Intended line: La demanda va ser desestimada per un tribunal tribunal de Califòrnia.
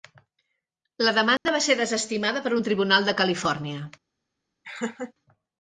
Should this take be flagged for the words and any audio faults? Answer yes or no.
yes